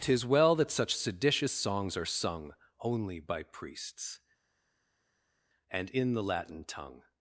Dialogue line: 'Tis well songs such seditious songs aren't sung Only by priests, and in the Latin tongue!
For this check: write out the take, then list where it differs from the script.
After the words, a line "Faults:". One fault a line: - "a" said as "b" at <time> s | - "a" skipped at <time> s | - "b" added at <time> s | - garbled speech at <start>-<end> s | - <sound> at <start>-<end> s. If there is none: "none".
'Tis well that such seditious songs are sung Only by priests, and in the Latin tongue!
Faults:
- "songs" said as "that" at 0.6 s
- "aren't" said as "are" at 1.9 s